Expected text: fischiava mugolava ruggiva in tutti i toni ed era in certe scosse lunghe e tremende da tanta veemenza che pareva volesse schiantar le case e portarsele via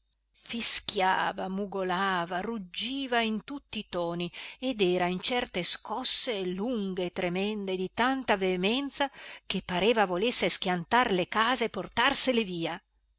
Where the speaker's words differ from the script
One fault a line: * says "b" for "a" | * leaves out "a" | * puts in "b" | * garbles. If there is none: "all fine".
* says "di" for "da"